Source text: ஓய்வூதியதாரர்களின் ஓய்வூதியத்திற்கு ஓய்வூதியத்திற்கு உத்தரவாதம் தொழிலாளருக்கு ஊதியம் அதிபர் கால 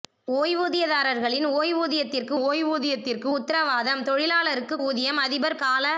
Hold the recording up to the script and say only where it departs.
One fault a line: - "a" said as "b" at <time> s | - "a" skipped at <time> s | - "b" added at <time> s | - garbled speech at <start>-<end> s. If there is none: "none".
none